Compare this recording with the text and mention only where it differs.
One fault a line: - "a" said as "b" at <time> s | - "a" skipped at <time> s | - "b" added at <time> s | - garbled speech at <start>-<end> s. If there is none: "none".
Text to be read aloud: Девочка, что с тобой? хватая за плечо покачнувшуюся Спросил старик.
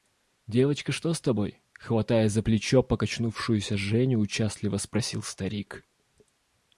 - "Женю участливо" added at 3.8 s